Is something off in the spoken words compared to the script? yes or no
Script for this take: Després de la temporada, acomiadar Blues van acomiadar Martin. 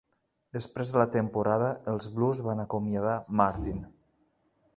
yes